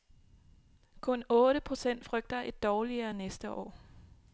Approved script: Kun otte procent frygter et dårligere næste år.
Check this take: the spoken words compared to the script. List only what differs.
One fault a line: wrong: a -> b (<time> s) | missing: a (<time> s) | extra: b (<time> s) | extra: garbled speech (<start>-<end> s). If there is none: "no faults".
no faults